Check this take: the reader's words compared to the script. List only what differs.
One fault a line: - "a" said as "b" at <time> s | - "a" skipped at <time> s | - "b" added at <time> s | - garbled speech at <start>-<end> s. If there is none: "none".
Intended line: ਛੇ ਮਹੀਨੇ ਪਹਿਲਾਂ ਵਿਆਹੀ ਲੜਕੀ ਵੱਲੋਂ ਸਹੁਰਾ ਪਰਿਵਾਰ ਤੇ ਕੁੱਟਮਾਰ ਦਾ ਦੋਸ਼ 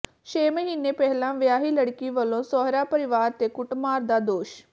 none